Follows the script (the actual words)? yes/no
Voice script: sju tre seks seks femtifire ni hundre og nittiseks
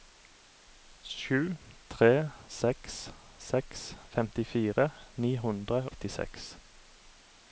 no